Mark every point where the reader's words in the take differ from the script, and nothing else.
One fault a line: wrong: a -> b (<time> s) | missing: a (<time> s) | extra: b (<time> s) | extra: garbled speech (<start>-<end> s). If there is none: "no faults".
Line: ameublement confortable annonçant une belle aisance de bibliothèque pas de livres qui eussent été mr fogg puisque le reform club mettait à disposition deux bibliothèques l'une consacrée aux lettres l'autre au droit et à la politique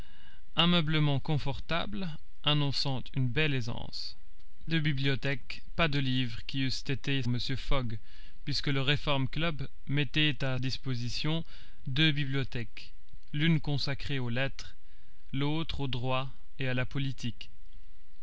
no faults